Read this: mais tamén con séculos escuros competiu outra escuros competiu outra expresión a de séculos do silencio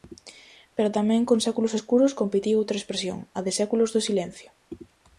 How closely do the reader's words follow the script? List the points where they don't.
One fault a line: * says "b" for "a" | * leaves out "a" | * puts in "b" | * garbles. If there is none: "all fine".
* says "pero" for "mais"
* leaves out "escuros competiu outra"